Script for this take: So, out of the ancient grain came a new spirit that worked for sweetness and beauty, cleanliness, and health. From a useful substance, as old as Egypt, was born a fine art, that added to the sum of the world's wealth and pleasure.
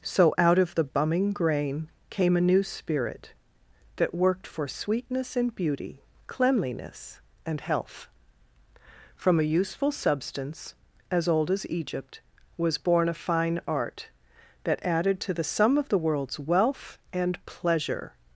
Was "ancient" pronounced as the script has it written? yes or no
no